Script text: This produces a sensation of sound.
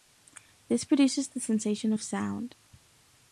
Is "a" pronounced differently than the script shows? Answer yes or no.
yes